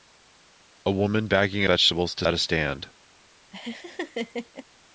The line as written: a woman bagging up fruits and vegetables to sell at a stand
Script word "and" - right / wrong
wrong